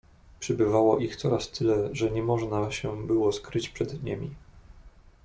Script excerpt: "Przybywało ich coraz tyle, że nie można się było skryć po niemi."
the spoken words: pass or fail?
fail